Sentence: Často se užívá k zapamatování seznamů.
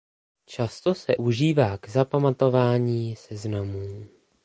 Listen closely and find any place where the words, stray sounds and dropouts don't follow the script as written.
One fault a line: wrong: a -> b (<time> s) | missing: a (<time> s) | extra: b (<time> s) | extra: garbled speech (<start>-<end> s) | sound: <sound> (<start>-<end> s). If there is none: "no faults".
no faults